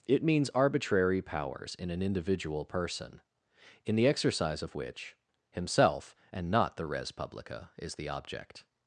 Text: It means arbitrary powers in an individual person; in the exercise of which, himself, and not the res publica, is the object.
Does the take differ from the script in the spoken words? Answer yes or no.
no